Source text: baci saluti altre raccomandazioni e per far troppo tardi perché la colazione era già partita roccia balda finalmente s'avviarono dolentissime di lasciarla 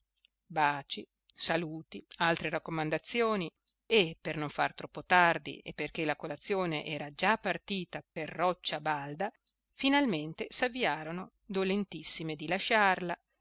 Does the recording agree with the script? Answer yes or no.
no